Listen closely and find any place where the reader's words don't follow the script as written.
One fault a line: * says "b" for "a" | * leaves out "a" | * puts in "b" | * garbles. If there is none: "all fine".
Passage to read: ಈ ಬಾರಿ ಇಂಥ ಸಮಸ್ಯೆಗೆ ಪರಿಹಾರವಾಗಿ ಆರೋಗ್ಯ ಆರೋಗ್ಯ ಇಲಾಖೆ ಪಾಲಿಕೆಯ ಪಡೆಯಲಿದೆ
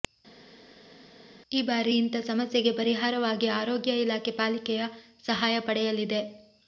* leaves out "ಆರೋಗ್ಯ"
* puts in "ಸಹಾಯ"